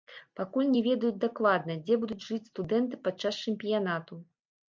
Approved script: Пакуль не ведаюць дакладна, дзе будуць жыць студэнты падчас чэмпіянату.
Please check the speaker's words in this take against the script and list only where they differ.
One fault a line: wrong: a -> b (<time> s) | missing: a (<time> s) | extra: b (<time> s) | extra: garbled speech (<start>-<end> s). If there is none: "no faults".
no faults